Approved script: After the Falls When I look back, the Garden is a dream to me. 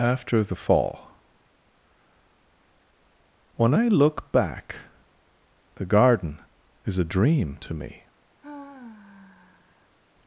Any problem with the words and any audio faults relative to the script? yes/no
yes